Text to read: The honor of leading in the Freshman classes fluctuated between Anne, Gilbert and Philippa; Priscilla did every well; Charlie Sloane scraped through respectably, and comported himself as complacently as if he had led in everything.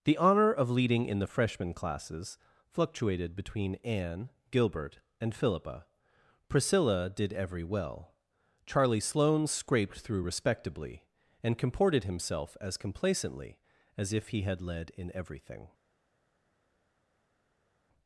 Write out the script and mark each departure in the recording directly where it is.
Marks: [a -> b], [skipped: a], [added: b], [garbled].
The honor of leading in the Freshman classes fluctuated between Anne, Gilbert and Philippa; Priscilla did every well; Charlie Sloane scraped through respectably, and comported himself as complacently as if he had led in everything.